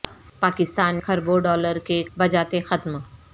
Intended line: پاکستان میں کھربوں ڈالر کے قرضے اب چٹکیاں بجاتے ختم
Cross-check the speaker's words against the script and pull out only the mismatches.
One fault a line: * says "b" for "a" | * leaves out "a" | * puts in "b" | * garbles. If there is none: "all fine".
* leaves out "میں"
* leaves out "قرضے اب چٹکیاں"